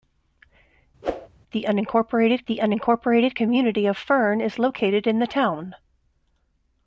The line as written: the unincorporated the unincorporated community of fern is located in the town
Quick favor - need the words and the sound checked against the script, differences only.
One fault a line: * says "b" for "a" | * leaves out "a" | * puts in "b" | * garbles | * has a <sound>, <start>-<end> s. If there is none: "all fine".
* has a whoosh, 1.0-1.3 s